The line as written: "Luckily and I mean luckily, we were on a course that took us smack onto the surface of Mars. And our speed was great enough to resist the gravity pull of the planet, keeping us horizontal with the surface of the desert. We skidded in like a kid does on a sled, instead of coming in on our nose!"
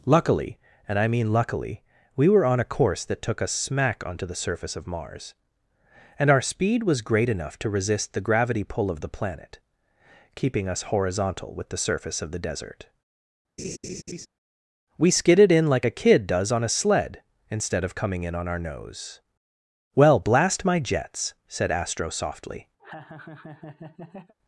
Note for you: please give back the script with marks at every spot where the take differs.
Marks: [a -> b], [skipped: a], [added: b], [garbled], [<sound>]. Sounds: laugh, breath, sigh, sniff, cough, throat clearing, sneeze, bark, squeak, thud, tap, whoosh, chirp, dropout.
"Luckily and I mean luckily, we were on a course that took us smack onto the surface of Mars. And our speed was great enough to resist the gravity pull of the planet, keeping us horizontal with the surface of the desert. [laugh] We skidded in like a kid does on a sled, instead of coming in on our nose!" [added: Well blast my jets said Astro softly] [laugh]